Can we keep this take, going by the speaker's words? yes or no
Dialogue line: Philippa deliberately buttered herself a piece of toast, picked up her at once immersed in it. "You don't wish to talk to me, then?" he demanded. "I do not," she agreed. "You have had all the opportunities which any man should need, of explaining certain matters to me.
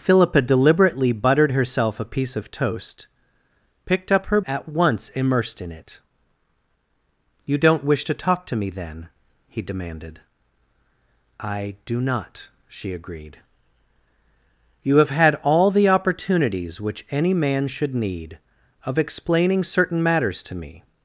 yes